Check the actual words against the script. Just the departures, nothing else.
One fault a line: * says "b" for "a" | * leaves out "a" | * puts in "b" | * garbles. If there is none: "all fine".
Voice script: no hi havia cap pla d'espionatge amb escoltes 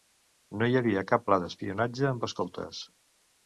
all fine